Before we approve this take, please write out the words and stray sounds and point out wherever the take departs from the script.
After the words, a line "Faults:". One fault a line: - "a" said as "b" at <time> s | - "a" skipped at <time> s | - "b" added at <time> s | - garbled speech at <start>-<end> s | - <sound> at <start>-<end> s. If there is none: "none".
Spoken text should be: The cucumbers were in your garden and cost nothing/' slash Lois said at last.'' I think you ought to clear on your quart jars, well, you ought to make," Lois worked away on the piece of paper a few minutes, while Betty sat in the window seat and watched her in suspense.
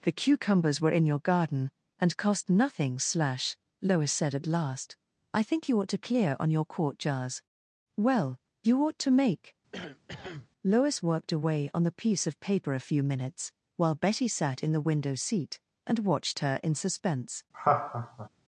The cucumbers were in your garden and cost nothing/' slash Lois said at last.'' I think you ought to clear on your quart jars, well, you ought to make," Lois worked away on the piece of paper a few minutes, while Betty sat in the window seat and watched her in suspense.
Faults:
- cough at 9.7-10.5 s
- laugh at 17.5-18.3 s